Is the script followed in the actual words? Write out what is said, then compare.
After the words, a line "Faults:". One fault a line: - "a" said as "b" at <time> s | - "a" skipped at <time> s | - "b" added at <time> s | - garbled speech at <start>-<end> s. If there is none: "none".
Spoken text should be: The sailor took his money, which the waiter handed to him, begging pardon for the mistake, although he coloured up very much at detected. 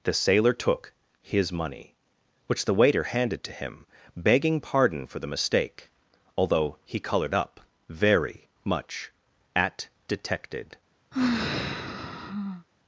The sailor took his money, which the waiter handed to him, begging pardon for the mistake, although he coloured up very much at detected.
Faults:
none